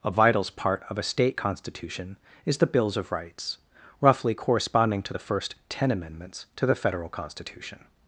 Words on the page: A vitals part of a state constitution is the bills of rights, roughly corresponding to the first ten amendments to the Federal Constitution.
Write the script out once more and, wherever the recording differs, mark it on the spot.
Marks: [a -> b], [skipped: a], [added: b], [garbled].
A vitals part of a state constitution is the bills of rights, roughly corresponding to the first ten amendments to the Federal Constitution.